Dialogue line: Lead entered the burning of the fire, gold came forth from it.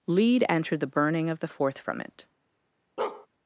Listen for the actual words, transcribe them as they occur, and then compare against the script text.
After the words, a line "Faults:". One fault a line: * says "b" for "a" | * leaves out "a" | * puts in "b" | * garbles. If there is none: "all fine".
Lead entered the burning of the forth from it.
Faults:
* leaves out "fire gold came"